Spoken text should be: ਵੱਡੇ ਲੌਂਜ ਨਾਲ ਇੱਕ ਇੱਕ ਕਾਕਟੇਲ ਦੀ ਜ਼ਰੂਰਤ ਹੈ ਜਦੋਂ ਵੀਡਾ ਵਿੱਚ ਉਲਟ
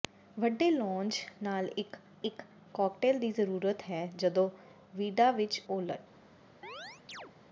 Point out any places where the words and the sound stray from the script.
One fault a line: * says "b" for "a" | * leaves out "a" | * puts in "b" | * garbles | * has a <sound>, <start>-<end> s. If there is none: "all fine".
* has a chirp, 6.6-7.3 s